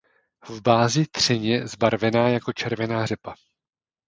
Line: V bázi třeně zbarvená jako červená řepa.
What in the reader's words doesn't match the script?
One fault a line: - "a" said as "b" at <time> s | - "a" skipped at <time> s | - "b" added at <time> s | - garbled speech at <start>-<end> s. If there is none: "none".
none